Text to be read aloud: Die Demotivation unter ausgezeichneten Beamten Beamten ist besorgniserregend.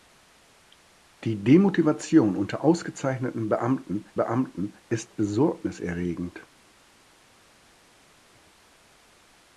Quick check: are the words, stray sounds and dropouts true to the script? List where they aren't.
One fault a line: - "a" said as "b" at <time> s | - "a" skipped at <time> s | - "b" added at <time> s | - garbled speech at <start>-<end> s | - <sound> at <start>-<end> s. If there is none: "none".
none